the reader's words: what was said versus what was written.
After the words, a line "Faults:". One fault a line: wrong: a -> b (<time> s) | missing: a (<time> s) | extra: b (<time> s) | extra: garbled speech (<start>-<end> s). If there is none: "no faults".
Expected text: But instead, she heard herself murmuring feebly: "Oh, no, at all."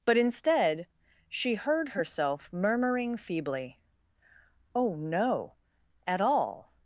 But instead, she heard herself murmuring feebly: "Oh, no, at all."
Faults:
no faults